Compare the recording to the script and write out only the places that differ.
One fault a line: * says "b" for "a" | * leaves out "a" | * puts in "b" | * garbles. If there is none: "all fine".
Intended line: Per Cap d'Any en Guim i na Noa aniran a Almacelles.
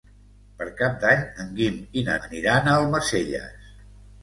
* leaves out "Noa"